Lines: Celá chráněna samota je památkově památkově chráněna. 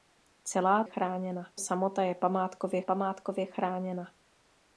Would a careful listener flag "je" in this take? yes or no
no